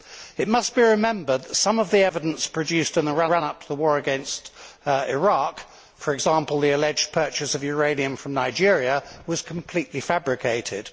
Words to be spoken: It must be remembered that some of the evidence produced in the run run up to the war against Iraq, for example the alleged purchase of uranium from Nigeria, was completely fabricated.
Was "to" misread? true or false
false